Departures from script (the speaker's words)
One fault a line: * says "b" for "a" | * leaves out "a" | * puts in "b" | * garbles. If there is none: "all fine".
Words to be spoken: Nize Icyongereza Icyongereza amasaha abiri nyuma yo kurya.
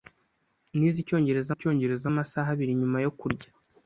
all fine